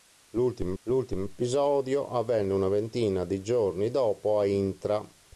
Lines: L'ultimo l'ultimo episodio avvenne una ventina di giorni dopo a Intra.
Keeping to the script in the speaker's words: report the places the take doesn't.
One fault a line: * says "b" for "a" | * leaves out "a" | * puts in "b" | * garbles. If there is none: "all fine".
all fine